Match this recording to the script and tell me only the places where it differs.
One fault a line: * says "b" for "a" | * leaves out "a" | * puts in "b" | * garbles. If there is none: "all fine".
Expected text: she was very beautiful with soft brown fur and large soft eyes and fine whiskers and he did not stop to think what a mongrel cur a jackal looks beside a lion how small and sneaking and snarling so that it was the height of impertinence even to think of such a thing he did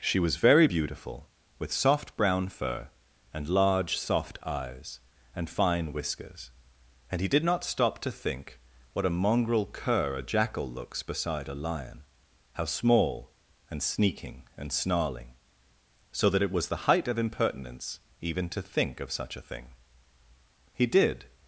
all fine